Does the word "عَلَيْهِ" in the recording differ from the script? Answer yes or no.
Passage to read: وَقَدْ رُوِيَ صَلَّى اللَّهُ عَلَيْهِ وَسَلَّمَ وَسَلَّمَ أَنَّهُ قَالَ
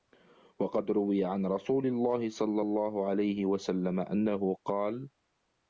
no